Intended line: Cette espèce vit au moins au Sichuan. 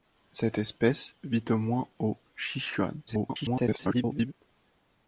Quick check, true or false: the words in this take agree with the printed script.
false